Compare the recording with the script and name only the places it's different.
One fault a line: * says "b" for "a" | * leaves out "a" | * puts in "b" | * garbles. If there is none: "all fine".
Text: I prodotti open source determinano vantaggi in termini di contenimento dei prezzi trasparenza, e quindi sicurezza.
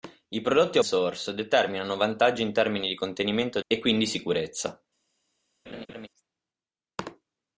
* leaves out "open"
* leaves out "dei prezzi trasparenza"